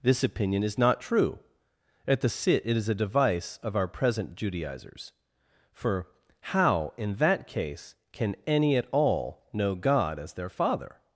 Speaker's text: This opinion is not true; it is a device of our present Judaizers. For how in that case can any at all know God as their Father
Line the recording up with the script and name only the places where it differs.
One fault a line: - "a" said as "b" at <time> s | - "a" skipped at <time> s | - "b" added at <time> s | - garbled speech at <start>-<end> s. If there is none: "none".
- "at the sit" added at 2.1 s